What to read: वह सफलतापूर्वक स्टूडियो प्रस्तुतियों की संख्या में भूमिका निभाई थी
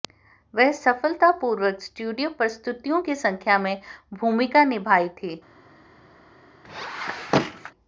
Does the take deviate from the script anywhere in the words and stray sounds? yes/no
yes